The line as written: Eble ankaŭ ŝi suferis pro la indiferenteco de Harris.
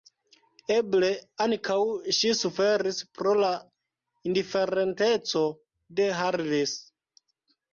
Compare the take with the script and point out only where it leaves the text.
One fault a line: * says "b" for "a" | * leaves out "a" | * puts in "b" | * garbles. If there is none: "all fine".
all fine